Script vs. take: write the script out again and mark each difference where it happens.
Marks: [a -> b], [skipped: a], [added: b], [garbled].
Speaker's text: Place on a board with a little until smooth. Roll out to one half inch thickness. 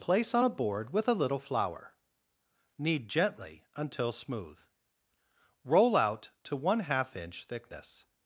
Place on a board with a little [added: flour Knead gently] until smooth. Roll out to one half inch thickness.